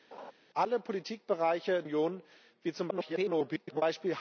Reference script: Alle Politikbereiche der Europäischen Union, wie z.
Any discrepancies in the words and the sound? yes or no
yes